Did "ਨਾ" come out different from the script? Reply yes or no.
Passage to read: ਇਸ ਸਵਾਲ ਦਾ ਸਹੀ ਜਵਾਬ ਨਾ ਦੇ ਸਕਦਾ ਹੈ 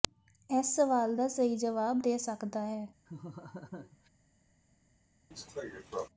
yes